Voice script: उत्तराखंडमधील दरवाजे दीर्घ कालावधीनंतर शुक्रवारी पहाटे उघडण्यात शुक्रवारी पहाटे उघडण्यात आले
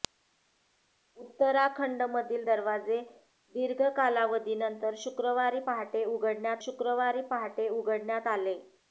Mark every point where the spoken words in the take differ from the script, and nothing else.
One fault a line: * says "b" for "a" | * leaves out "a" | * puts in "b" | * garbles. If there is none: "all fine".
all fine